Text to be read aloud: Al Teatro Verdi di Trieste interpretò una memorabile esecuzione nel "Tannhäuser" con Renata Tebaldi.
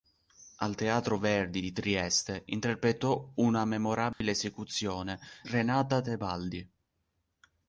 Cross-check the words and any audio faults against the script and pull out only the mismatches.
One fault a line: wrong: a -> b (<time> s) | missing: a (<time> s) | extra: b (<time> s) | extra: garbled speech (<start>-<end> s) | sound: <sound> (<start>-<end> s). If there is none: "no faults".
sound: dropout (4.1-4.2 s)
missing: nel Tannhäuser con (5.2 s)